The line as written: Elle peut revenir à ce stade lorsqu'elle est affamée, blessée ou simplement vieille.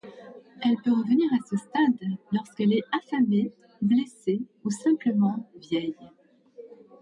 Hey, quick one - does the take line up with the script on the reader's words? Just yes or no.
yes